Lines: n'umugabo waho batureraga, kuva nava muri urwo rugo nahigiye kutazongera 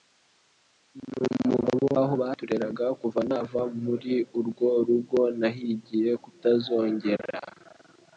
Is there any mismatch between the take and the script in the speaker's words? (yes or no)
no